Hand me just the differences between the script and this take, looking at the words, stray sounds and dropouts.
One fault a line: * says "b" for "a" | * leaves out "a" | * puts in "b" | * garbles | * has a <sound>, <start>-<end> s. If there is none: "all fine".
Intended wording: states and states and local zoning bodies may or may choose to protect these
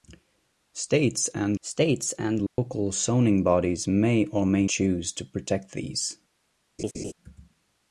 * has a dropout, 2.5-2.6 s
* has a laugh, 6.8-7.1 s